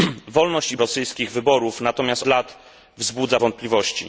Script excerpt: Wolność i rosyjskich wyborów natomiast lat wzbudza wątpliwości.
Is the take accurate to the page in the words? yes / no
yes